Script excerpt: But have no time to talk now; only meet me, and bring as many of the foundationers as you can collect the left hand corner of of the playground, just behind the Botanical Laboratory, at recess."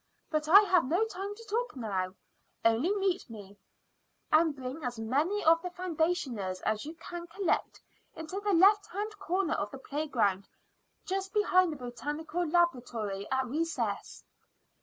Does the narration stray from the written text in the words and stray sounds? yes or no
yes